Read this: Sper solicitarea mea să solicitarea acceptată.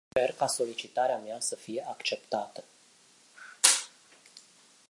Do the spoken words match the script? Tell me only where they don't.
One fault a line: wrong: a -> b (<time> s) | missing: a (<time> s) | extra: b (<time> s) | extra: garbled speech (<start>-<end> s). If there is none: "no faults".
extra: ca (0.3 s)
wrong: solicitarea -> fie (1.6 s)